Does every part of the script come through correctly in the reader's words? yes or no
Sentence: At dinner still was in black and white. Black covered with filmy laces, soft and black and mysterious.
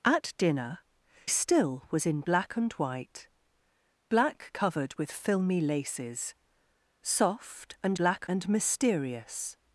yes